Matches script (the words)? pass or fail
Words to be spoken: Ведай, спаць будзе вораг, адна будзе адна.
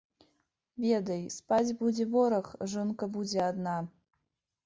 fail